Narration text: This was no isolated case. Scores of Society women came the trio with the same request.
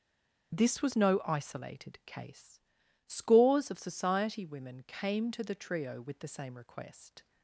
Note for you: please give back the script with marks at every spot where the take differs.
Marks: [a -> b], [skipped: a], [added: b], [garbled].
This was no isolated case. Scores of Society women came [added: to] the trio with the same request.